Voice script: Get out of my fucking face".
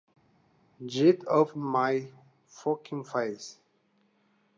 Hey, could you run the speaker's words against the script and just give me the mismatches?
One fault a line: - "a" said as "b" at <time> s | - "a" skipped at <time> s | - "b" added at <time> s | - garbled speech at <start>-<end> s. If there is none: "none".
- "of" skipped at 1.6 s